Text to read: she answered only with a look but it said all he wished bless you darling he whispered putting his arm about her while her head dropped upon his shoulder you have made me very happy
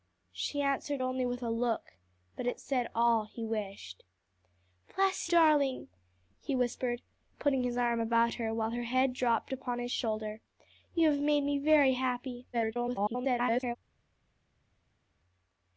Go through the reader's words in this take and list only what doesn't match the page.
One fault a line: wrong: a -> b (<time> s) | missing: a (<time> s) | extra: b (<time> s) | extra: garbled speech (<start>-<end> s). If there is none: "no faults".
missing: you (5.3 s)
extra: garbled speech (12.5-13.8 s)